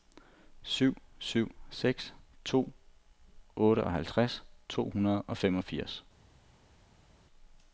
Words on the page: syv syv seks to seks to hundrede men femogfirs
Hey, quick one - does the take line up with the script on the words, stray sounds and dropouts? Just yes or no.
no